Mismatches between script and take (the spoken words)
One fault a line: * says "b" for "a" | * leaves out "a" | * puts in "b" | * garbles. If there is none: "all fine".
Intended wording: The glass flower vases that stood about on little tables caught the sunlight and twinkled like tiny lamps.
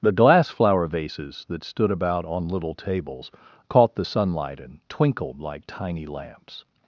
all fine